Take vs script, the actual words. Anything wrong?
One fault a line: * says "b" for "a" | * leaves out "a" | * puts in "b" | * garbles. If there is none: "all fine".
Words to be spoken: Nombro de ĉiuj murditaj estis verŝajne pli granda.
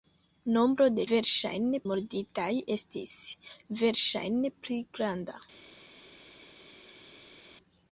* says "verŝajne" for "ĉiuj"